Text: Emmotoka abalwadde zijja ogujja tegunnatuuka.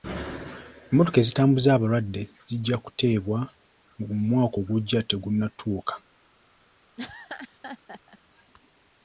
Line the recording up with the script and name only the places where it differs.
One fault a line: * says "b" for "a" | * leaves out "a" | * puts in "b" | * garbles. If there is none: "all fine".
* puts in "ezitambuza"
* puts in "kuteebwa ng'omwaka"